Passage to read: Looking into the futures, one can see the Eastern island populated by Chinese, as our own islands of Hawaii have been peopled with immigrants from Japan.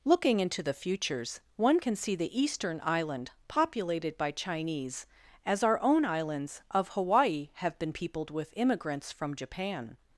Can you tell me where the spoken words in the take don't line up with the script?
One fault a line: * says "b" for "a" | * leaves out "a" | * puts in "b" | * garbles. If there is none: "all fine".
all fine